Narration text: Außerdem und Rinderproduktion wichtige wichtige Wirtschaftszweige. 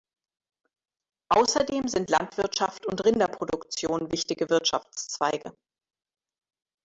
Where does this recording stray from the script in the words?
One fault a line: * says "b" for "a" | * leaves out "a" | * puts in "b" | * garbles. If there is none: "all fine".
* puts in "sind Landwirtschaft"
* leaves out "wichtige"